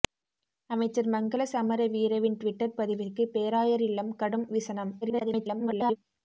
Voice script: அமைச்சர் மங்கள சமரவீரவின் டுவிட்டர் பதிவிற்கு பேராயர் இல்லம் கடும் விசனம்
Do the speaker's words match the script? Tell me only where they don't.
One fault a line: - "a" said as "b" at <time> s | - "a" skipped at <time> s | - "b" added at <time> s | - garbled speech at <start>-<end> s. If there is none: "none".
- garbled speech at 5.0-6.0 s